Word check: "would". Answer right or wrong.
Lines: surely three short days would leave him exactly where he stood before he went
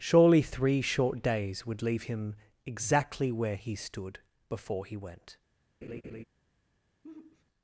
right